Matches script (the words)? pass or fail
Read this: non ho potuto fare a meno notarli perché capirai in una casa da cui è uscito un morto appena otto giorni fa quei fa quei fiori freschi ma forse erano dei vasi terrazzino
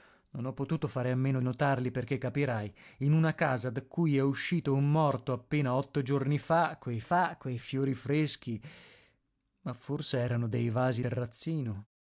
pass